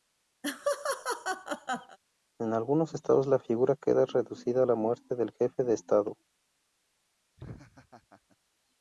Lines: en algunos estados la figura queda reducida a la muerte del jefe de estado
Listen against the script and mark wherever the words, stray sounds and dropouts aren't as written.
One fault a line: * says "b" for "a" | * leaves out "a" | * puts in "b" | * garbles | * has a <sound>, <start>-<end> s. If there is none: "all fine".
* has a laugh, 0.4-2.0 s
* has a laugh, 7.4-8.4 s